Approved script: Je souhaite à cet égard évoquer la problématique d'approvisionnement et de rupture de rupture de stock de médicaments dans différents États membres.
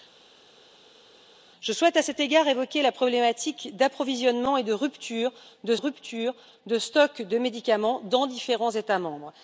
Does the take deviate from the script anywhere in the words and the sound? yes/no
no